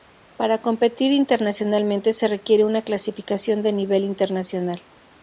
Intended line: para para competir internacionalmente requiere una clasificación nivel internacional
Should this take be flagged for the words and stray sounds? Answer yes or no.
yes